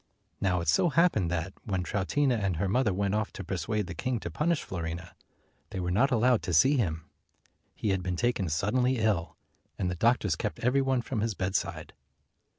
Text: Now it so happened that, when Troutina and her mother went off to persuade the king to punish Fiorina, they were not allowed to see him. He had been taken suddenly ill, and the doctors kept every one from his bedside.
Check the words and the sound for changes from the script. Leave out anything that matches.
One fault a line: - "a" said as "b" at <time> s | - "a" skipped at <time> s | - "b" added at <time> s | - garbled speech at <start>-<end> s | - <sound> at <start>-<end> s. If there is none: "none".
none